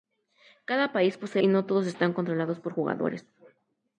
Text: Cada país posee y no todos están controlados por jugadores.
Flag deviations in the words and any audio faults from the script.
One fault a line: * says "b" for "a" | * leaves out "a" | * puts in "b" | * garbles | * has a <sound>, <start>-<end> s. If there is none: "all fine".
all fine